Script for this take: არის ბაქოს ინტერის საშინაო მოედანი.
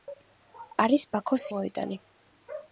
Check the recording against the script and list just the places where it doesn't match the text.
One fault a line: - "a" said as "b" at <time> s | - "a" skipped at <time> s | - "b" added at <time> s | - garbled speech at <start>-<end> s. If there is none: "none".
- "ინტერის საშინაო" skipped at 1.4 s